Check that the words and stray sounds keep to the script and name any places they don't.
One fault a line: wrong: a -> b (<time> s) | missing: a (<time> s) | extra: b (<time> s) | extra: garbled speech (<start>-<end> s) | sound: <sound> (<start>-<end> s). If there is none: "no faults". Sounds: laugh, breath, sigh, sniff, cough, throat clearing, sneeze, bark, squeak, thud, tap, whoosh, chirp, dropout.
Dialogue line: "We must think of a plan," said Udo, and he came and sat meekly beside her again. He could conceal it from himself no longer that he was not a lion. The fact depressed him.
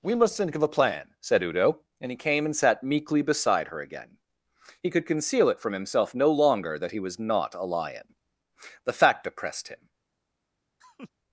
wrong: depressed -> oppressed (9.3 s)
sound: laugh (10.8-11.1 s)